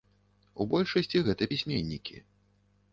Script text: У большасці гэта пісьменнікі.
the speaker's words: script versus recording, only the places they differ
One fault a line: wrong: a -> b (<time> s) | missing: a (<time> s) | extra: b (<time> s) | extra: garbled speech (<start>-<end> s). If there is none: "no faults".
no faults